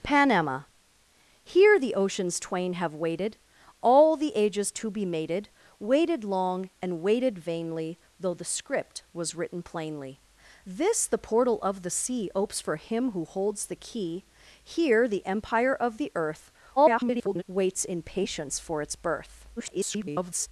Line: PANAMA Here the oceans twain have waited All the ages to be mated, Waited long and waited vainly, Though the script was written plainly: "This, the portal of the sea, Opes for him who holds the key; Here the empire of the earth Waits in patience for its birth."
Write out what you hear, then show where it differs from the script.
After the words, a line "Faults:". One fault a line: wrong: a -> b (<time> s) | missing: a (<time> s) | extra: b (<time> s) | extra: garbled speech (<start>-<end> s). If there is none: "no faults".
PANAMA Here the oceans twain have waited All the ages to be mated, Waited long and waited vainly, Though the script was written plainly: "This, the portal of the sea, Opes for him who holds the key; Here the empire of the earth [garbled] Waits in patience for its birth." [garbled]
Faults:
extra: garbled speech (16.8-17.4 s)
extra: garbled speech (19.6-20.5 s)